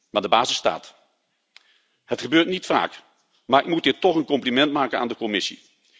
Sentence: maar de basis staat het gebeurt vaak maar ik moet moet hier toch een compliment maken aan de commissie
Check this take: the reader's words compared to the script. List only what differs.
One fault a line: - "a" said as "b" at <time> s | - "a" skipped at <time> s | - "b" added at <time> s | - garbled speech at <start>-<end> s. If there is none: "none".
- "niet" added at 2.5 s
- "moet" skipped at 3.8 s